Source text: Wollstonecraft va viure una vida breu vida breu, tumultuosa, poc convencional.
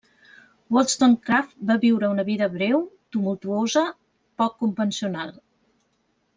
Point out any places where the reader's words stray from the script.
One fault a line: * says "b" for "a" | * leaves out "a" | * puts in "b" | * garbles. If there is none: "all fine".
* leaves out "vida breu"